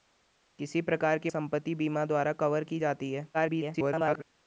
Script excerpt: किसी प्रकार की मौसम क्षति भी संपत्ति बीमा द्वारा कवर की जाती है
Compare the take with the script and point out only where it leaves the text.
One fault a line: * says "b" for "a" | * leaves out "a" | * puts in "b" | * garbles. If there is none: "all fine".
* leaves out "मौसम क्षति भी"
* garbles